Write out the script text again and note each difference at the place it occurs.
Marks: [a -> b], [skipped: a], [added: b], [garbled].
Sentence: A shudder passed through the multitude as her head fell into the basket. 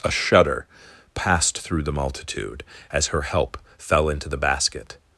A shudder passed through the multitude as her [head -> help] fell into the basket.